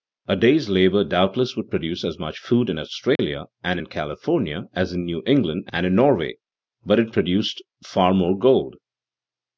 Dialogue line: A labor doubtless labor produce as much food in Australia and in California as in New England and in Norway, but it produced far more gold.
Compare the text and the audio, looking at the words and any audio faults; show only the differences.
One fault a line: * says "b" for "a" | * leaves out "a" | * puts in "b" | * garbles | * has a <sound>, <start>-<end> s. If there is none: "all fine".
* puts in "day's"
* says "would" for "labor"
* has a dropout, 3.2-3.2 s